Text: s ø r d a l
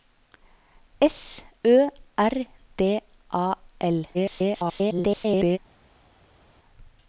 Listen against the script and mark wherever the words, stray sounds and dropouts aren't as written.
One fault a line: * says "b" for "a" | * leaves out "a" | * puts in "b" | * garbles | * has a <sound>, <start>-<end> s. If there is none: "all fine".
* garbles